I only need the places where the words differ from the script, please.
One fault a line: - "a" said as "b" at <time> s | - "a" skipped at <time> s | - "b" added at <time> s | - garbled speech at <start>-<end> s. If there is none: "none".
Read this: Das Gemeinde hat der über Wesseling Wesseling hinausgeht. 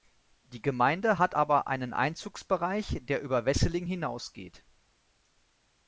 - "Das" said as "Die" at 0.5 s
- "aber einen Einzugsbereich" added at 1.3 s
- "Wesseling" skipped at 3.9 s